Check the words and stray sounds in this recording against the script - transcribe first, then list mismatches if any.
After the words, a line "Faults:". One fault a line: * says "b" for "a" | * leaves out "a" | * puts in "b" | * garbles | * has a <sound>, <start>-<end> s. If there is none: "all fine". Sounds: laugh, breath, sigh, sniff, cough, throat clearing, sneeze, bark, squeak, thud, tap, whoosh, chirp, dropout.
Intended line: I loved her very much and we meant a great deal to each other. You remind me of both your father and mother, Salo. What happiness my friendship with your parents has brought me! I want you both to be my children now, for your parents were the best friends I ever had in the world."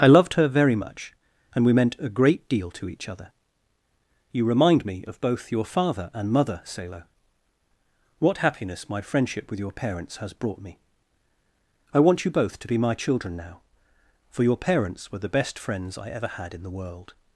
I loved her very much and we meant a great deal to each other. You remind me of both your father and mother, Salo. What happiness my friendship with your parents has brought me! I want you both to be my children now, for your parents were the best friends I ever had in the world."
Faults:
all fine